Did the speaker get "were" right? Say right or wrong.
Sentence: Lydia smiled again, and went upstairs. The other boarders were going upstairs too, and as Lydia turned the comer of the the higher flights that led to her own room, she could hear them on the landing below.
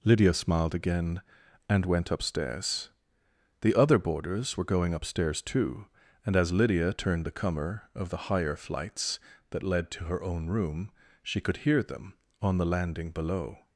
right